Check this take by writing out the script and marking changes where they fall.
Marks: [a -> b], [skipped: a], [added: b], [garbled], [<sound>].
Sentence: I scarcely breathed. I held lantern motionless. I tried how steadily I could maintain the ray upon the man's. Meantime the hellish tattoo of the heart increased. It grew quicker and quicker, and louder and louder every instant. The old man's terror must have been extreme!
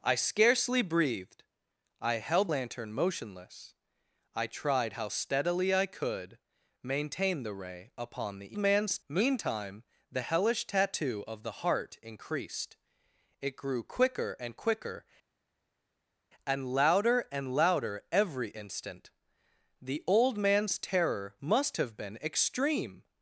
I scarcely breathed. I held lantern motionless. I tried how steadily I could maintain the ray upon the man's. Meantime the hellish tattoo of the heart increased. It grew quicker and quicker, and louder and louder every instant. The old man's terror must have been extreme!